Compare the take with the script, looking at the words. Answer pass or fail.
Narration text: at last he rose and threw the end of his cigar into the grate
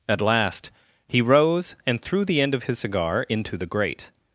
pass